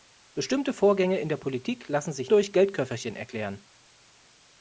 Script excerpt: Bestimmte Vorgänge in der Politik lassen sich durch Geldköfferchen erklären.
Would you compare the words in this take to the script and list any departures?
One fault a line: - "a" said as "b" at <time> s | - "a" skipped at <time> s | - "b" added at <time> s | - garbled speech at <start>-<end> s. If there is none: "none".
none